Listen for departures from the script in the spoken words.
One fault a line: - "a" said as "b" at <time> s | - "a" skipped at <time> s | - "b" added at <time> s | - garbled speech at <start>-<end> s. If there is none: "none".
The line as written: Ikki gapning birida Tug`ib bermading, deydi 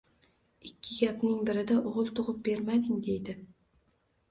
- "O`g`il" added at 1.9 s